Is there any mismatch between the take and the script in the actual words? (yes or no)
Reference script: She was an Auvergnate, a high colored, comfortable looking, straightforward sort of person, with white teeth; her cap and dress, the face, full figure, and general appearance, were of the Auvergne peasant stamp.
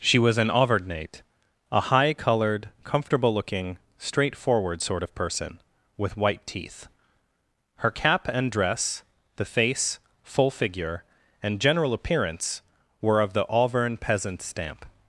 no